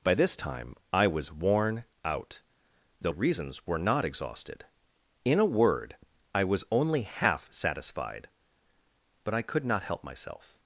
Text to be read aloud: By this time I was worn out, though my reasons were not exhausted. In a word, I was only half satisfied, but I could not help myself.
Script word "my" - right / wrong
wrong